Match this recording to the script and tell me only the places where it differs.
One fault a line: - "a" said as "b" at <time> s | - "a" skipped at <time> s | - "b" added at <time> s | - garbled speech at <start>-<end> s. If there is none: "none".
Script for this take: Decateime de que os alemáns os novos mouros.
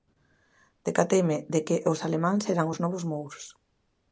- "eran" added at 2.5 s